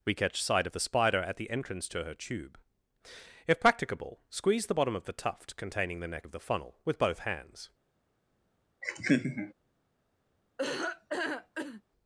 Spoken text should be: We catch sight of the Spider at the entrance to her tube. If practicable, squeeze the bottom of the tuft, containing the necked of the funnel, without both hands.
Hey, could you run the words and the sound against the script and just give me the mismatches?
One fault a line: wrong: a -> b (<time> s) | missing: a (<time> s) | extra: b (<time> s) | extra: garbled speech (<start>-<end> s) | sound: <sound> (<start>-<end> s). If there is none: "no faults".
wrong: necked -> neck (6.1 s)
wrong: without -> with (6.8 s)
sound: laugh (8.8-9.5 s)
sound: laugh (10.6-11.8 s)